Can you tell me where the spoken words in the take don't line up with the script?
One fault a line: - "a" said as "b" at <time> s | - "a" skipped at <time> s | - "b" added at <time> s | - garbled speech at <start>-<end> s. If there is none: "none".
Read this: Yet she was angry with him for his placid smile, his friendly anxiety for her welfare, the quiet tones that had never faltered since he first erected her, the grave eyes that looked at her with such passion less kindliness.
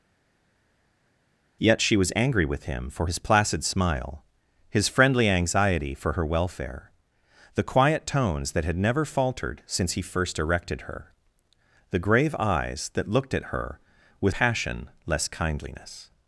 - "such" skipped at 14.3 s